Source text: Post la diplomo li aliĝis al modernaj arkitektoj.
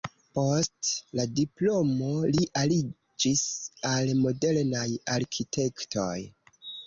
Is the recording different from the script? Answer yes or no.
no